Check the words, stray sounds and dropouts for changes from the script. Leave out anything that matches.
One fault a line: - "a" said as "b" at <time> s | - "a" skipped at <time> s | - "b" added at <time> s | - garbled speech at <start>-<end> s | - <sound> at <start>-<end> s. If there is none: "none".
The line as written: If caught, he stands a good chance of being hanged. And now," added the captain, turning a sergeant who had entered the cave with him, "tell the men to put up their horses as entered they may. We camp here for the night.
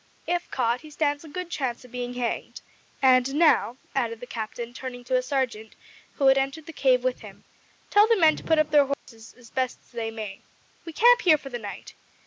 - "to" added at 5.0 s
- dropout at 8.9-9.1 s
- "entered" said as "best" at 9.5 s